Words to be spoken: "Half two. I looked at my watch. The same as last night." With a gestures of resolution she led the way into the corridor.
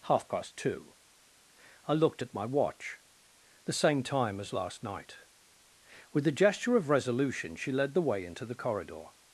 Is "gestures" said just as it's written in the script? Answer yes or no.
no